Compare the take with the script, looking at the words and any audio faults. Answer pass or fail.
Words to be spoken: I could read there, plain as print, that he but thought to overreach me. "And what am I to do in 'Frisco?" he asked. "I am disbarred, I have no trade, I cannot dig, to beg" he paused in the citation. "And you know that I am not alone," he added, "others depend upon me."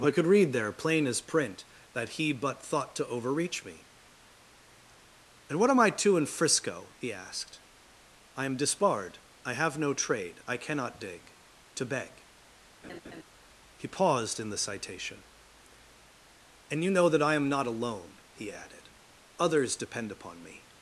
fail